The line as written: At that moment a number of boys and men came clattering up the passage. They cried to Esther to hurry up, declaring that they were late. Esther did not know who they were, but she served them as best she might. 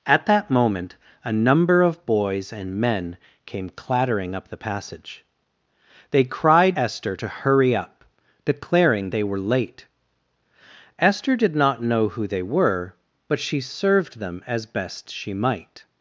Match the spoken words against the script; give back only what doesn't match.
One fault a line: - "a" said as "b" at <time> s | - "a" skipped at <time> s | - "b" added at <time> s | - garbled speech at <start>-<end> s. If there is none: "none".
- "to" skipped at 6.8 s
- "that" skipped at 9.1 s